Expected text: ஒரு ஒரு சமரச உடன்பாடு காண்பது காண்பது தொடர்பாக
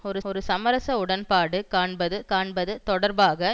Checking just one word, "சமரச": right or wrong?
right